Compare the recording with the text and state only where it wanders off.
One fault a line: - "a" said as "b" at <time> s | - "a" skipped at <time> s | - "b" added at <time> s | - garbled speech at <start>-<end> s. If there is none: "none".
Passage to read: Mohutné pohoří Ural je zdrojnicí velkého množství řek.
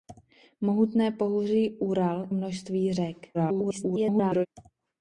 - "je zdrojnicí velkého" skipped at 2.3 s
- garbled speech at 3.3-4.5 s